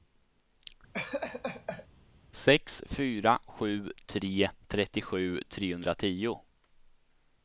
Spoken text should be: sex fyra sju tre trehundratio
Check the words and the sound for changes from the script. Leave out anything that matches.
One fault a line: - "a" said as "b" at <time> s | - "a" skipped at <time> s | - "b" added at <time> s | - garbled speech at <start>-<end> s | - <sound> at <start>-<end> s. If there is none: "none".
- laugh at 0.9-1.9 s
- "trettiosju" added at 4.7 s